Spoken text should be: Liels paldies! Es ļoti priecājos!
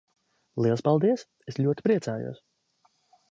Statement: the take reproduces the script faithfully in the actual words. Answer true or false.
true